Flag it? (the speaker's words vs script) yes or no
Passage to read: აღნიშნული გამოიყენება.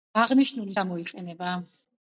no